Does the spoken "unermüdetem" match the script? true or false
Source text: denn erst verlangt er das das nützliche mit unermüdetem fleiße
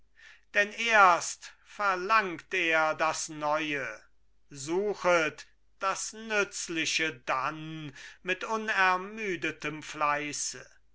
true